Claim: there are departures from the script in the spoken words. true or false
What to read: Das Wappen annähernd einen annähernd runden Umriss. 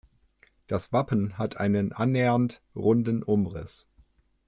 true